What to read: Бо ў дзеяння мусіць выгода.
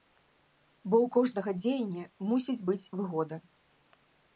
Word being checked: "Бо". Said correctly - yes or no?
yes